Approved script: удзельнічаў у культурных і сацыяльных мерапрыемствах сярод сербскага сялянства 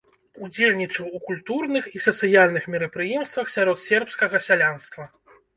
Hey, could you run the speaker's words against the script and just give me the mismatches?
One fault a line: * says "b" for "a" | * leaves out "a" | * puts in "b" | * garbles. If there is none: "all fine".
all fine